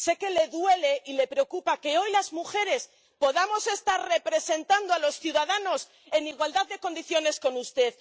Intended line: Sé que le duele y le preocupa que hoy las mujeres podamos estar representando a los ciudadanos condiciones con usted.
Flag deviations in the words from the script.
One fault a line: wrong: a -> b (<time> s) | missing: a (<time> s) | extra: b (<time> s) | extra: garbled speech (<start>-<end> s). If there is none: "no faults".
extra: en igualdad de (6.1 s)